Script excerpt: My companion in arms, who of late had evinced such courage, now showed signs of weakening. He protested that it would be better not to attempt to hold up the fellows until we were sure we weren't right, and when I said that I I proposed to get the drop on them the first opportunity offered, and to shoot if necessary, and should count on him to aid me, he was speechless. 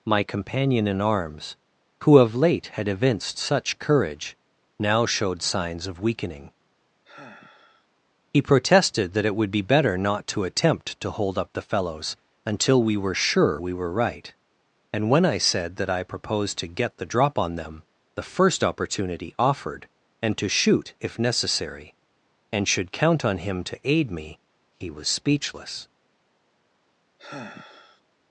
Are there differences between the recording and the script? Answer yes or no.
yes